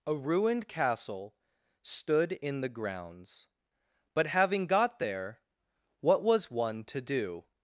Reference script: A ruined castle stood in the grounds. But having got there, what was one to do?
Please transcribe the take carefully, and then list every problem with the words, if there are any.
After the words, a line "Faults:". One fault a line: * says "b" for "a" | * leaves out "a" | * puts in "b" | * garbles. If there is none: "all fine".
A ruined castle stood in the grounds. But having got there, what was one to do?
Faults:
all fine